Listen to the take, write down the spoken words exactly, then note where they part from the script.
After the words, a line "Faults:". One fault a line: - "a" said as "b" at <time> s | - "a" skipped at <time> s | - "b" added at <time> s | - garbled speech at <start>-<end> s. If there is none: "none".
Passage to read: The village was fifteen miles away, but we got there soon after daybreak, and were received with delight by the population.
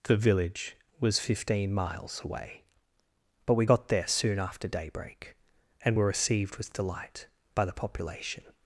The village was fifteen miles away, but we got there soon after daybreak, and were received with delight by the population.
Faults:
none